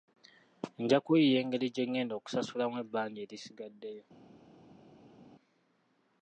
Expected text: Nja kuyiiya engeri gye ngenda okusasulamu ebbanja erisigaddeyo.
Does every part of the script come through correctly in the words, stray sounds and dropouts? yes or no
yes